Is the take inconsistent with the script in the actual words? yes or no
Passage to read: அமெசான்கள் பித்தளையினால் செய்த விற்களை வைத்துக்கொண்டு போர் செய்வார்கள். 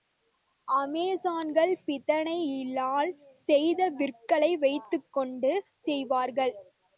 yes